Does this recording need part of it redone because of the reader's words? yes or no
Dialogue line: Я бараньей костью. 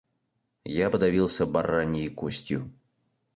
yes